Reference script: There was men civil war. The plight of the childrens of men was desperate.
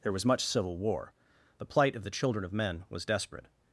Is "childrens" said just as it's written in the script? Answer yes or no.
no